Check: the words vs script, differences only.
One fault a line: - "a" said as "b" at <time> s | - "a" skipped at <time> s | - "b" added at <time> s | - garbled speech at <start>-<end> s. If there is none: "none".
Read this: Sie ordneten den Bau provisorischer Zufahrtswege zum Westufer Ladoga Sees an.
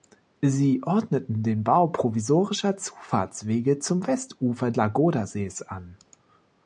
none